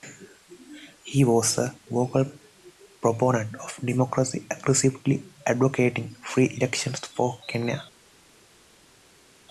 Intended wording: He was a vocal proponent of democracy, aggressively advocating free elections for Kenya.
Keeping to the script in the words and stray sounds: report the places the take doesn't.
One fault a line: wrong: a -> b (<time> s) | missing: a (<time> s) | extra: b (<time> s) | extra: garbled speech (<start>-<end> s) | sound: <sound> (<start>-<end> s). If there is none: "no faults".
no faults